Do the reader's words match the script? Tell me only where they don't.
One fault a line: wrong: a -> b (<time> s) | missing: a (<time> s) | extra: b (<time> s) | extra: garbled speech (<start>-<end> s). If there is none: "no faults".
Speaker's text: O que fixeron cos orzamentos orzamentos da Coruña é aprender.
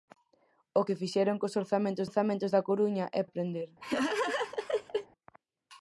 no faults